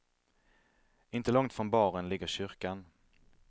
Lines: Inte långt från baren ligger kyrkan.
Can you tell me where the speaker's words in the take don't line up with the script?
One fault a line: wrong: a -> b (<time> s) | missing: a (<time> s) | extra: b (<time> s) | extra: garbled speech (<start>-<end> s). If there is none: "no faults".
no faults